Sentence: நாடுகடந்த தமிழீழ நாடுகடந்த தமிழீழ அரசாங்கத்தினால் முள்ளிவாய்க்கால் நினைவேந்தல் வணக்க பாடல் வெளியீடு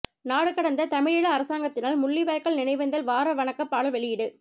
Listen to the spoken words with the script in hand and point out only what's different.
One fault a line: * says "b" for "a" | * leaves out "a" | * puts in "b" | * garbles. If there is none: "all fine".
* leaves out "நாடுகடந்த தமிழீழ"
* puts in "வார"